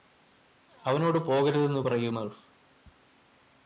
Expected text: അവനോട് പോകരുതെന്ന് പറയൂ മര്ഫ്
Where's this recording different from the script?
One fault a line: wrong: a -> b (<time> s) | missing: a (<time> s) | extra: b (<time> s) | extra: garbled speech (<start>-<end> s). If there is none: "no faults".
no faults